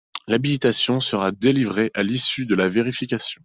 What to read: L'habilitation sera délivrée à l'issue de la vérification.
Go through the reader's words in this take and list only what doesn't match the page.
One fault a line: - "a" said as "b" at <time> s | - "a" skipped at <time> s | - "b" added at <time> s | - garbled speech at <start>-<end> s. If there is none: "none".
none